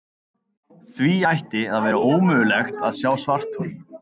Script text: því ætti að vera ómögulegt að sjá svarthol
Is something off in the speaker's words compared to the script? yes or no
no